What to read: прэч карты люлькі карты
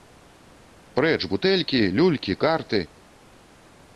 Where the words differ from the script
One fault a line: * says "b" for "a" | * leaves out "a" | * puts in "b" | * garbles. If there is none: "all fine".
* says "бутэлькі" for "карты"